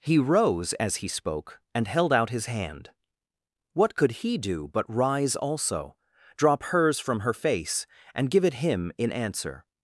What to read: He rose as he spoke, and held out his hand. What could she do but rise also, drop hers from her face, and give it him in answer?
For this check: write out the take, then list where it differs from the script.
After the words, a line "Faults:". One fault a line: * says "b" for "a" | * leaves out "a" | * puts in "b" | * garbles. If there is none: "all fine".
He rose as he spoke, and held out his hand. What could he do but rise also, drop hers from her face, and give it him in answer?
Faults:
* says "he" for "she"